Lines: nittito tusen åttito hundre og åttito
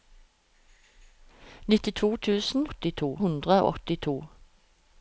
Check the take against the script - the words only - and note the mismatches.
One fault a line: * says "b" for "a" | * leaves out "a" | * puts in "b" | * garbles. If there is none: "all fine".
all fine